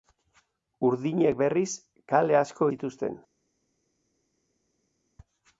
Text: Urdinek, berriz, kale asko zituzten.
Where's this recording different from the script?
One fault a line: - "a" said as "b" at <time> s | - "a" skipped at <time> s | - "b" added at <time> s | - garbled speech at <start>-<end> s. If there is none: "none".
none